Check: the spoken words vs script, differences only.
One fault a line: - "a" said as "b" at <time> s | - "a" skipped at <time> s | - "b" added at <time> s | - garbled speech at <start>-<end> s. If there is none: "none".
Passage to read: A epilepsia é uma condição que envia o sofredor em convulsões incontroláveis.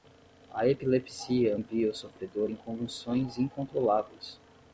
- "uma condição que" skipped at 1.6 s